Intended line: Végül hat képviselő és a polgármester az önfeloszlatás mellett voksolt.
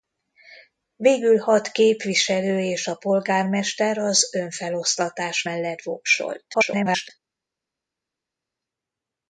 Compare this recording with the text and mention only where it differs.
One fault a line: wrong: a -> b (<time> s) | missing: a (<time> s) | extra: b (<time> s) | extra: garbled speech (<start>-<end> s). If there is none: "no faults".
extra: garbled speech (6.5-7.1 s)